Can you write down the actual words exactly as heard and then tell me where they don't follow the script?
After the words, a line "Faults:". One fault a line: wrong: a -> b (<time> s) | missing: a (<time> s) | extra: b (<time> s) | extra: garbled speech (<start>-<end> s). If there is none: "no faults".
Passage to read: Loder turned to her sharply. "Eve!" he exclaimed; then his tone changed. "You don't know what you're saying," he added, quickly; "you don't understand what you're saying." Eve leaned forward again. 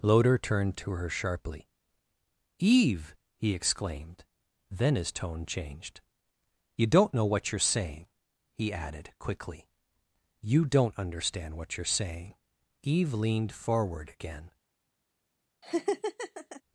Loder turned to her sharply. "Eve!" he exclaimed; then his tone changed. "You don't know what you're saying," he added, quickly; "you don't understand what you're saying." Eve leaned forward again.
Faults:
no faults